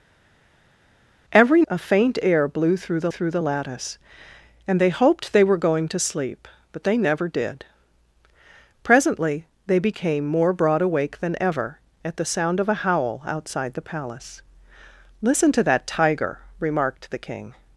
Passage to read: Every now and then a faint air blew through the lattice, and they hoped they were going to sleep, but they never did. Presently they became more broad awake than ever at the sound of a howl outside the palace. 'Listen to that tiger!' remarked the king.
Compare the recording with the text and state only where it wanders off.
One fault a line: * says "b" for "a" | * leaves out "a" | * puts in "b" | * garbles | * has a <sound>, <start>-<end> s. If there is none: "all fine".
* leaves out "now and then"
* puts in "through the"